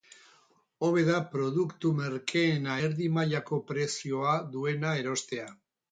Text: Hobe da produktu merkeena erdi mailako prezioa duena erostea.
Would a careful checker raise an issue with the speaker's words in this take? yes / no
no